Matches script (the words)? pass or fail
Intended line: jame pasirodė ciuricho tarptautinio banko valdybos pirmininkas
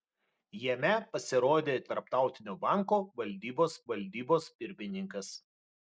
fail